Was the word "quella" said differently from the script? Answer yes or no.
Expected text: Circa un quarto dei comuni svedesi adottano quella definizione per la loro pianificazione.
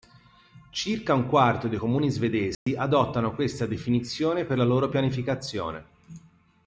yes